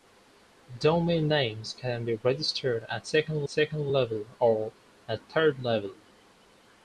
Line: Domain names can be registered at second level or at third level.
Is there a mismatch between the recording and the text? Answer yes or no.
yes